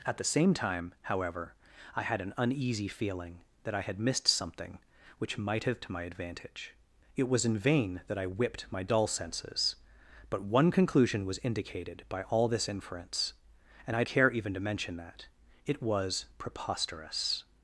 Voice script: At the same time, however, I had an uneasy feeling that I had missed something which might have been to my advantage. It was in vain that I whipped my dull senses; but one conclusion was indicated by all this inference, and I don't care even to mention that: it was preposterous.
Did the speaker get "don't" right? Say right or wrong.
wrong